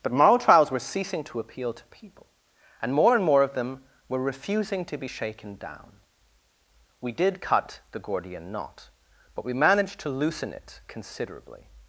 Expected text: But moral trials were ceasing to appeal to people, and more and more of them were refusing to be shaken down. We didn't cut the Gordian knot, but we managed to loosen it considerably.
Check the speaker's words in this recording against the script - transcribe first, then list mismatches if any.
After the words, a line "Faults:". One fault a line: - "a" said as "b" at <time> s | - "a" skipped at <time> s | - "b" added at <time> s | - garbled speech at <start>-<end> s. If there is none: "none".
But moral trials were ceasing to appeal to people, and more and more of them were refusing to be shaken down. We did cut the Gordian knot, but we managed to loosen it considerably.
Faults:
- "didn't" said as "did" at 7.1 s